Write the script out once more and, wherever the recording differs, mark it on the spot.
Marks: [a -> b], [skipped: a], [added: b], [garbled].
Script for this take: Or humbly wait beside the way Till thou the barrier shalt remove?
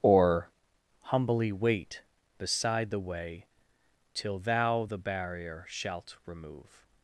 Or humbly wait beside the way Till thou the barrier shalt remove?